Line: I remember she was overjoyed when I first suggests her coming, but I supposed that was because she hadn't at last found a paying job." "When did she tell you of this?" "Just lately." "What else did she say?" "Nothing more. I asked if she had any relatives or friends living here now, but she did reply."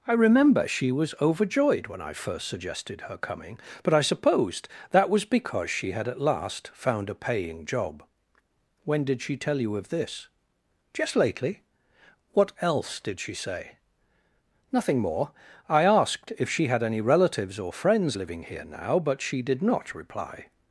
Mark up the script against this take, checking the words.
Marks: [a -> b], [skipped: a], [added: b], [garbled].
I remember she was overjoyed when I first [suggests -> suggested] her coming, but I supposed that was because she [hadn't -> had] at last found a paying job." "When did she tell you of this?" "Just lately." "What else did she say?" "Nothing more. I asked if she had any relatives or friends living here now, but she did [added: not] reply."